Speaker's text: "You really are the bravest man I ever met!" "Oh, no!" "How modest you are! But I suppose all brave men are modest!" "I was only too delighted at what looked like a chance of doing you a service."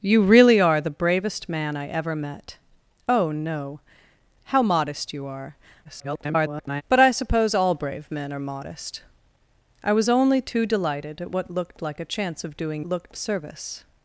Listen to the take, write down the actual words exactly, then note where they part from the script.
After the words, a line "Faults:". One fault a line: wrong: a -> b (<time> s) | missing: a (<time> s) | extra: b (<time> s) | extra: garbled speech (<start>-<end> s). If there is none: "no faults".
"You really are the bravest man I ever met!" "Oh, no!" "How modest you are! [garbled] But I suppose all brave men are modest!" "I was only too delighted at what looked like a chance of doing looked a service."
Faults:
extra: garbled speech (5.8-6.8 s)
wrong: you -> looked (12.8 s)